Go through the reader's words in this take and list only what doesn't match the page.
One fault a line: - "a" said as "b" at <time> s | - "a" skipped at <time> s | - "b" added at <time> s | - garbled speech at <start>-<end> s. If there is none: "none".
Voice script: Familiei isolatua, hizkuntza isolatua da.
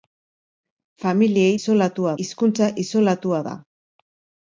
none